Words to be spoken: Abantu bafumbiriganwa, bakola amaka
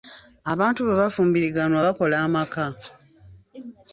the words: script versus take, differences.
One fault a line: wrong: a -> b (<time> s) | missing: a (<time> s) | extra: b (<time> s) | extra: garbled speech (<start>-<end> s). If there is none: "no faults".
extra: bwe (0.8 s)